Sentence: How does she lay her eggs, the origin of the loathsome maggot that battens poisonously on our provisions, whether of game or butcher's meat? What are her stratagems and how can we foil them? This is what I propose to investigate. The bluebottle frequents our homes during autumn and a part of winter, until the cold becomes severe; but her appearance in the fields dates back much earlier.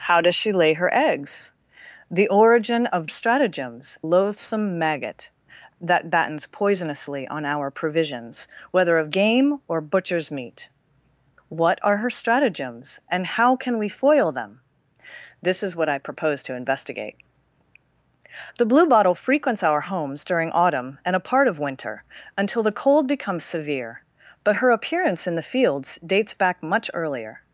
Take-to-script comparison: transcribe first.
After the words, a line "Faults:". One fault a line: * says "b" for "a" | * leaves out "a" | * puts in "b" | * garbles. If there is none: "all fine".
How does she lay her eggs, the origin of stratagems loathsome maggot that battens poisonously on our provisions, whether of game or butcher's meat? What are her stratagems and how can we foil them? This is what I propose to investigate. The bluebottle frequents our homes during autumn and a part of winter, until the cold becomes severe; but her appearance in the fields dates back much earlier.
Faults:
* says "stratagems" for "the"